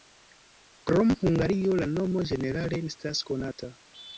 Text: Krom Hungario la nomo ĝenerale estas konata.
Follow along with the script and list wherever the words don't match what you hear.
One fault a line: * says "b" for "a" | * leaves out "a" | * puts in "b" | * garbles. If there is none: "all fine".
all fine